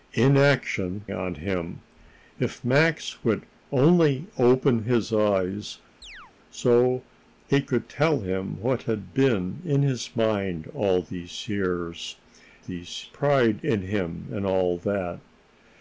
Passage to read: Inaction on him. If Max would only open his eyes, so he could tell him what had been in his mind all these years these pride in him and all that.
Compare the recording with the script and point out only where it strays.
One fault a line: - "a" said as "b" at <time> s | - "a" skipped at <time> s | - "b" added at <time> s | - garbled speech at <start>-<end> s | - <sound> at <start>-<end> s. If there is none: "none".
- chirp at 6.0-6.3 s